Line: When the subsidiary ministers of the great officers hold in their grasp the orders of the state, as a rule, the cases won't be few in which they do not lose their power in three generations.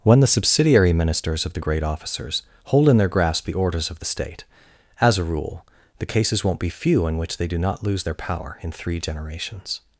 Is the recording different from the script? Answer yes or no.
no